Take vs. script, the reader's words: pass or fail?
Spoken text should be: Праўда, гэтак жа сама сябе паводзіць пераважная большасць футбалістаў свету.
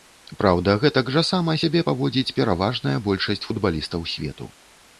pass